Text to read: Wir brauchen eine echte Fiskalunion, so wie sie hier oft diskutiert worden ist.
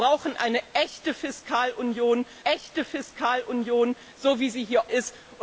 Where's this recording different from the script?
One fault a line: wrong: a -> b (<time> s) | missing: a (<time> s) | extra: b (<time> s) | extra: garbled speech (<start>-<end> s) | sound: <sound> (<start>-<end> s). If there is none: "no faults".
extra: echte Fiskalunion (2.4 s)
missing: oft diskutiert worden (4.8 s)